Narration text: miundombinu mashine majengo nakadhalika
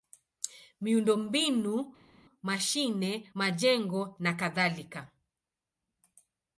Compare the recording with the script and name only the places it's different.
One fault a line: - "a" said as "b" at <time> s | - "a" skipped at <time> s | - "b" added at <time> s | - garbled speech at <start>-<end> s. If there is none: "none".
none